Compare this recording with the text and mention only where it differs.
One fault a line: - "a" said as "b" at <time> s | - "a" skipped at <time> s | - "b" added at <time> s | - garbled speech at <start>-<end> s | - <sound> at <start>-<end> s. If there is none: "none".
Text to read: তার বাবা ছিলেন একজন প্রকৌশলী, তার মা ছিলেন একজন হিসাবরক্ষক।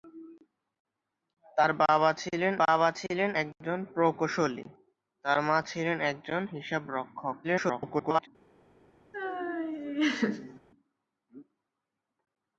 - "বাবা ছিলেন" added at 2.6 s
- garbled speech at 7.4-8.3 s
- laugh at 9.1-10.6 s